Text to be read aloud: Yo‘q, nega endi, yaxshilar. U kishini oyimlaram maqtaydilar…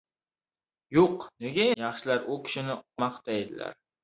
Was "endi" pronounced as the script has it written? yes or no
no